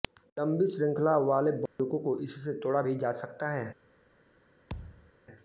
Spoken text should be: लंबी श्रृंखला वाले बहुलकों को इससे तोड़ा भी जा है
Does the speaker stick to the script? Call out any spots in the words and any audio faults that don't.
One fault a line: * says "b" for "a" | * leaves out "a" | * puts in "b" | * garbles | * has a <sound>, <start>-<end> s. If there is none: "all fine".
* has a dropout, 1.7-1.8 s
* puts in "सकता"
* has a thud, 4.7-5.1 s